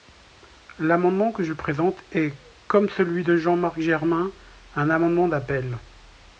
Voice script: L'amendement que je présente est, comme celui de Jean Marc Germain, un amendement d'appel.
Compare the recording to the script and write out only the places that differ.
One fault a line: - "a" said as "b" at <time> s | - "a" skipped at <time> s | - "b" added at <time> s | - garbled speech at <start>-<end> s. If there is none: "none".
none